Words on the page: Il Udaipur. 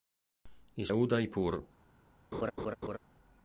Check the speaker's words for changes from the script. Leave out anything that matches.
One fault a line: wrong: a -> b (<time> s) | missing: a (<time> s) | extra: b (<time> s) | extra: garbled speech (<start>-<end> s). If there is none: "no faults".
no faults